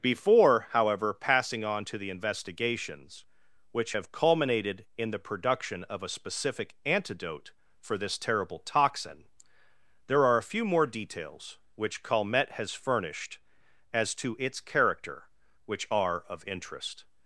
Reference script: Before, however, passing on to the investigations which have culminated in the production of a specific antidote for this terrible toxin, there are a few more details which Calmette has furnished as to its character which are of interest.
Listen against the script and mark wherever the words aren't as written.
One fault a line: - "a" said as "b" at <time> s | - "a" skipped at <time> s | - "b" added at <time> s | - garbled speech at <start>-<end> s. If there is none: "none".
none